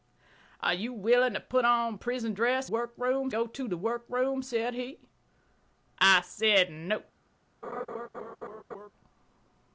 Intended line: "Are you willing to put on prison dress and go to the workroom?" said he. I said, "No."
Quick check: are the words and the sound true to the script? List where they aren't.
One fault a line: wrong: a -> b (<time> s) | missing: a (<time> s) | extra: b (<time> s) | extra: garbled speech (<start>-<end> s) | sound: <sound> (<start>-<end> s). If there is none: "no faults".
wrong: and -> workroom (2.6 s)
sound: laugh (7.6-8.9 s)